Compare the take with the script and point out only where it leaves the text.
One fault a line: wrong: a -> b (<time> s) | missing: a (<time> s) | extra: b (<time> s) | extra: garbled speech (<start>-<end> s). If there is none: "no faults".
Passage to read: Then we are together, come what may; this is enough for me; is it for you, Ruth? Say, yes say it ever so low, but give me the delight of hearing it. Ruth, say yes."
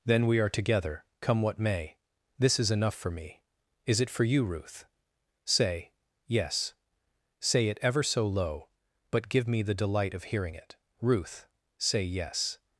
no faults